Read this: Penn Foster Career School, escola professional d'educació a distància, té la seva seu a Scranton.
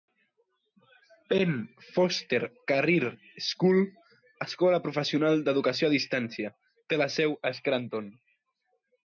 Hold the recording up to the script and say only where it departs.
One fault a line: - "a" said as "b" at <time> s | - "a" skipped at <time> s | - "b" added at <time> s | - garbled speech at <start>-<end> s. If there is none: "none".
- "seva" skipped at 7.1 s